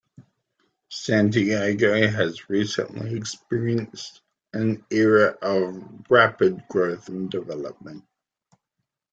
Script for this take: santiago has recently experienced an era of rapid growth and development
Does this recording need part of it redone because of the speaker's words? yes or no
no